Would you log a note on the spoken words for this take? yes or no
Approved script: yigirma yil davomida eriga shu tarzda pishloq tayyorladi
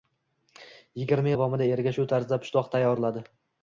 yes